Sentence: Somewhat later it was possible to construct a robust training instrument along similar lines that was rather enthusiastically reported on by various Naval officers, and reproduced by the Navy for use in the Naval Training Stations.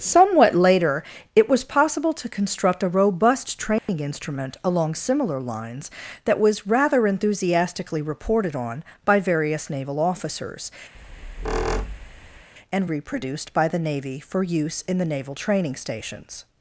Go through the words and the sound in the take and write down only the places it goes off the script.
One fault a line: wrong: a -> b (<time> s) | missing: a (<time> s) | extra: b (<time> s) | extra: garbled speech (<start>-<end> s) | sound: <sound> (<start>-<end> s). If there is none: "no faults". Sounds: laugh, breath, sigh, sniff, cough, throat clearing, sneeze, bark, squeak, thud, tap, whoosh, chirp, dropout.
sound: dropout (3.8-3.9 s)
sound: squeak (10.9-12.5 s)